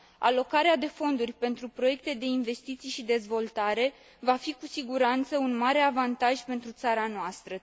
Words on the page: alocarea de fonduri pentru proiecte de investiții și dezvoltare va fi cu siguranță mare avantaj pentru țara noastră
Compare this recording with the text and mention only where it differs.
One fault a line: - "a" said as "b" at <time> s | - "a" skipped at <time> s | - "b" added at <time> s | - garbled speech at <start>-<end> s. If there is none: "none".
- "un" added at 5.4 s